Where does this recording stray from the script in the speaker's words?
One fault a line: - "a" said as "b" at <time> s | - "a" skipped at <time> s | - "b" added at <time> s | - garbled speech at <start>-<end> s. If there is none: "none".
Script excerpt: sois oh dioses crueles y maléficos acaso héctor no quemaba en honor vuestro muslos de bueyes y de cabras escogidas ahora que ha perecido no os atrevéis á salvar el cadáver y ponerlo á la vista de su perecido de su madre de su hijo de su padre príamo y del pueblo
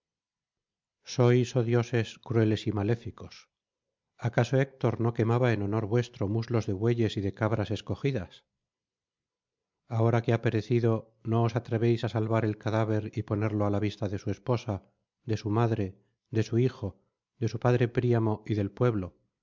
- "perecido" said as "esposa" at 14.3 s